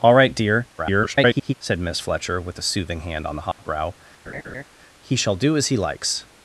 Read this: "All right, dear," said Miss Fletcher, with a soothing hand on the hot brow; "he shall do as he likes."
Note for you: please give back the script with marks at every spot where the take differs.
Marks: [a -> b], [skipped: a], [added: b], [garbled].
"All right, dear," [garbled] said Miss Fletcher, with a soothing hand on the hot brow; "he shall do as he likes."